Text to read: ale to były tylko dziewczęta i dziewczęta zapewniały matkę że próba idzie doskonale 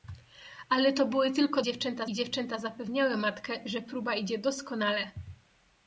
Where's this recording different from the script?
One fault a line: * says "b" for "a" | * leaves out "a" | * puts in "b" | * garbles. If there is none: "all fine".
all fine